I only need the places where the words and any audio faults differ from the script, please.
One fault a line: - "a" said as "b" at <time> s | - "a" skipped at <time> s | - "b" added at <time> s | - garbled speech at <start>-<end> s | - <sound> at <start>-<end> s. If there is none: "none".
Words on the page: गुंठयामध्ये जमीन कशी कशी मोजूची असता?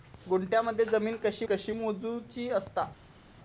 none